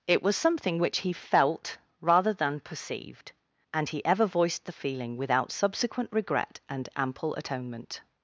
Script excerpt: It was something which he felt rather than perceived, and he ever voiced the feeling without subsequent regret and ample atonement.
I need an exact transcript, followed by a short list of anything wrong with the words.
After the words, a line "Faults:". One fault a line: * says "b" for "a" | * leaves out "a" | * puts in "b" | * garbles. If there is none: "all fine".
It was something which he felt rather than perceived, and he ever voiced the feeling without subsequent regret and ample atonement.
Faults:
all fine